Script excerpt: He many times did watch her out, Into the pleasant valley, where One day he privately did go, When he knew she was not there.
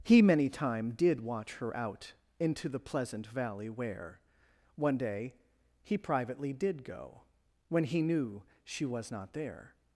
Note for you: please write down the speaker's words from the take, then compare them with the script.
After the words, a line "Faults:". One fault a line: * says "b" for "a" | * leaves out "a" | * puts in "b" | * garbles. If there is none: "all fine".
He many time did watch her out, Into the pleasant valley, where One day he privately did go, When he knew she was not there.
Faults:
* says "time" for "times"